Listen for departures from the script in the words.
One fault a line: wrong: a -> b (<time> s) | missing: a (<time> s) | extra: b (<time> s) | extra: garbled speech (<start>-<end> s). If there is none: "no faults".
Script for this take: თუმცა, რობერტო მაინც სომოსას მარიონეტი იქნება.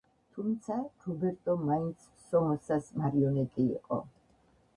wrong: იქნება -> იყო (3.7 s)